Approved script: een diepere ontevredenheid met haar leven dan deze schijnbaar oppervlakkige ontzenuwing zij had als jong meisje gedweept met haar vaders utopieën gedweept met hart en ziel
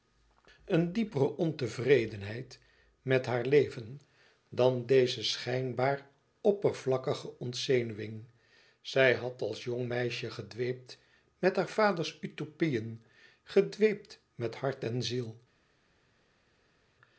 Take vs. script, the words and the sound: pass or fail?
pass